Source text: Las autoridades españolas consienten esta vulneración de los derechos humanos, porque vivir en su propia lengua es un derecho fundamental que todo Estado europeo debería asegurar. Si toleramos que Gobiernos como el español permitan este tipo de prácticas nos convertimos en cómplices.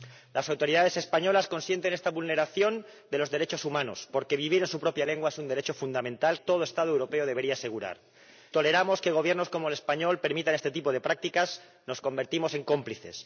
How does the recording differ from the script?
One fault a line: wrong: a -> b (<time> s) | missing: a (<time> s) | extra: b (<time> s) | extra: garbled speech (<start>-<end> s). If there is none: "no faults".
missing: que (6.4 s)
missing: Si (8.0 s)